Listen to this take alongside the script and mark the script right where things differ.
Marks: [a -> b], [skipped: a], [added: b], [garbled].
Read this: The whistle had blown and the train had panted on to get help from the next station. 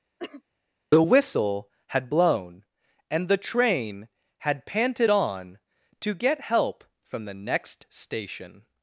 The whistle had blown and the train had panted on to get help from the next station.